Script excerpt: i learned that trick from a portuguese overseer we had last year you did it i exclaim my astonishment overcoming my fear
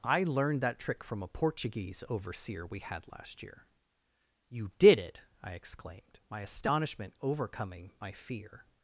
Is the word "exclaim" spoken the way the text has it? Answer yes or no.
no